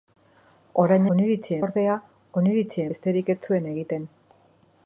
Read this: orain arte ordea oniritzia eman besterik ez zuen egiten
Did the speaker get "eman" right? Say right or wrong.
wrong